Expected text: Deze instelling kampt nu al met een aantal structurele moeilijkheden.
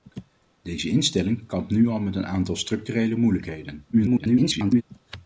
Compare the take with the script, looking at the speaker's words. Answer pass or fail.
fail